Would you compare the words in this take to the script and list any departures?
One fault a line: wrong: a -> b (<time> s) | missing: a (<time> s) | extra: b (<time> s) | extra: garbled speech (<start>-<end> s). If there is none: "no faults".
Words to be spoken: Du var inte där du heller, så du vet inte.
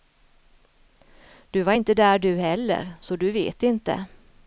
no faults